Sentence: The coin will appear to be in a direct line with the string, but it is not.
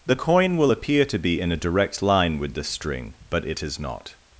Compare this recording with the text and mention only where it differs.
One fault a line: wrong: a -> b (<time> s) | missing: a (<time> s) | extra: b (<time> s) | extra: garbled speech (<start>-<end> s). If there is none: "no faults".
no faults